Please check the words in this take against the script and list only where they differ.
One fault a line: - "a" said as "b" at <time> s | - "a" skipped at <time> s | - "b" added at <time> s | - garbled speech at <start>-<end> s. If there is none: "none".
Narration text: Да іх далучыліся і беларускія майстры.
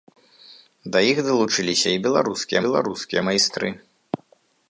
- "беларускія" added at 2.7 s